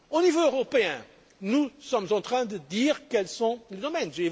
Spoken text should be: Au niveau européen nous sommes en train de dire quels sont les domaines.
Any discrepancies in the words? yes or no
no